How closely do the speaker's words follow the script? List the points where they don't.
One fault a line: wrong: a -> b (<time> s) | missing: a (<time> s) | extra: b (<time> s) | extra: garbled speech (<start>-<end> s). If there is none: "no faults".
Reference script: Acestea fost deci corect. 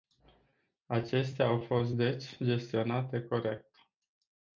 extra: au (1.5 s)
extra: gestionate (2.4 s)